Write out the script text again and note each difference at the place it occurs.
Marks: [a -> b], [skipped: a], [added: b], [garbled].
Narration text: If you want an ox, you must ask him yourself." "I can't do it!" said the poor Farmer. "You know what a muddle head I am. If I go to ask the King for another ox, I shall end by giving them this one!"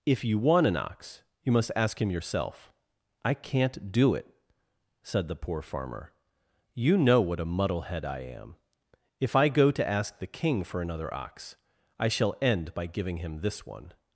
If you want an ox, you must ask him yourself." "I can't do it!" said the poor Farmer. "You know what a muddle head I am. If I go to ask the King for another ox, I shall end by giving [them -> him] this one!"